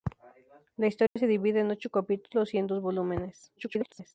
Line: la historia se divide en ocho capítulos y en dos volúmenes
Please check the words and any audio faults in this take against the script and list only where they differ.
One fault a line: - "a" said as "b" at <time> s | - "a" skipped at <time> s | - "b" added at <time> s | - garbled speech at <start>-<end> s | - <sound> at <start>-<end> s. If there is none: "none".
- dropout at 1.1-1.2 s
- garbled speech at 3.6-4.1 s